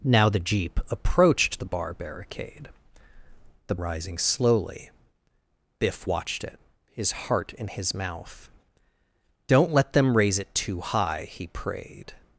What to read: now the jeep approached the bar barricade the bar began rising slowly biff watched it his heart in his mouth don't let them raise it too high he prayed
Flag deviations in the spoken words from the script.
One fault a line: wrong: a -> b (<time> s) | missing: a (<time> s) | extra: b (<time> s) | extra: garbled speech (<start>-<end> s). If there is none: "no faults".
missing: bar began (3.8 s)